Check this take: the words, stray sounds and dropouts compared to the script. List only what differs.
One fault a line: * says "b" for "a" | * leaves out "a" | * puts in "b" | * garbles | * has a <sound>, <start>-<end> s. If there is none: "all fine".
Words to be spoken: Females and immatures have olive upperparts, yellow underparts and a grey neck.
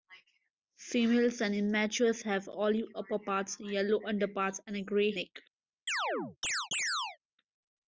* has a chirp, 5.9-7.2 s